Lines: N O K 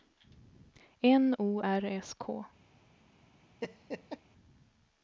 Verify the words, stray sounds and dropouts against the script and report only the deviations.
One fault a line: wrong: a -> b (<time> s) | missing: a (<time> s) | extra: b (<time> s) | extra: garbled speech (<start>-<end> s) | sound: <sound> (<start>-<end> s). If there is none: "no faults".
extra: R S (1.6 s)
sound: laugh (3.6-4.2 s)